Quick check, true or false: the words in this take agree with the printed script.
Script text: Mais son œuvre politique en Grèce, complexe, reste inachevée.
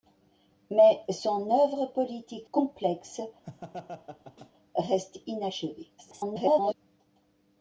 false